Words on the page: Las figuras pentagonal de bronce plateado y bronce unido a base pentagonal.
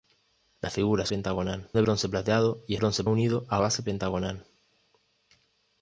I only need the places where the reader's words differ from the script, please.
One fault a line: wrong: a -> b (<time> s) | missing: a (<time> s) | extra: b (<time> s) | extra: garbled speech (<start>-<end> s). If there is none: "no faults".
no faults